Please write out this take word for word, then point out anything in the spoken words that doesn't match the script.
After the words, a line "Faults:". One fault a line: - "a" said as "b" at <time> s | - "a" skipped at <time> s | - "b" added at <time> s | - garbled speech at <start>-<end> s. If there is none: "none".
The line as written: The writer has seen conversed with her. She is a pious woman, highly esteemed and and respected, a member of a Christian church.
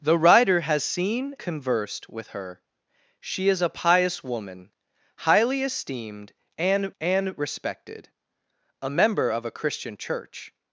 The writer has seen conversed with her. She is a pious woman, highly esteemed and and respected, a member of a Christian church.
Faults:
none